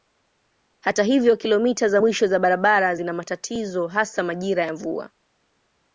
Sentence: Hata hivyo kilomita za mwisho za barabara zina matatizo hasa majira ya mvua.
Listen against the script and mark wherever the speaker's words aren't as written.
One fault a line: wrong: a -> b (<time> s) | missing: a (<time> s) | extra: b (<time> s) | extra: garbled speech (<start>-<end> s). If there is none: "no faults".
no faults